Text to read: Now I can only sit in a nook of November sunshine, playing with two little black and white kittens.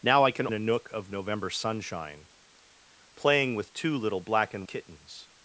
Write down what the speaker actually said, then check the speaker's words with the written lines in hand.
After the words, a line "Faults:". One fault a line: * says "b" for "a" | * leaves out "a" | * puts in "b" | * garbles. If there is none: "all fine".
Now I can a nook of November sunshine, playing with two little black and kittens.
Faults:
* leaves out "only sit in"
* leaves out "white"